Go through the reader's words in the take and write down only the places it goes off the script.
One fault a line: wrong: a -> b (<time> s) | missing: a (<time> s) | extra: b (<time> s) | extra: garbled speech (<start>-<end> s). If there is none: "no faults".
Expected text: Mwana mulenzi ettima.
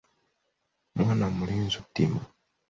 no faults